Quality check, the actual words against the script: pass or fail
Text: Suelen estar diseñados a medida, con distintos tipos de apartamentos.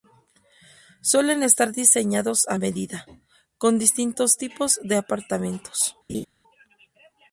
pass